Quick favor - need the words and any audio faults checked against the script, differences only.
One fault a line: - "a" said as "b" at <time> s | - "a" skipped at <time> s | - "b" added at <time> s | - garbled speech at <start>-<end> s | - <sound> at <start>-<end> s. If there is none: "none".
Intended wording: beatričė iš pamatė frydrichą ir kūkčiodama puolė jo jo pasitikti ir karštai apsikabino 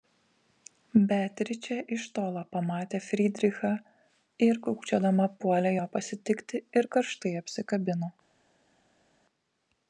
- "tolo" added at 2.1 s
- "jo" skipped at 5.9 s